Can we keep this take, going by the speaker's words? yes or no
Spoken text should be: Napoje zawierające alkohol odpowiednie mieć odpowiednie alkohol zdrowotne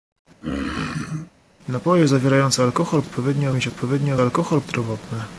yes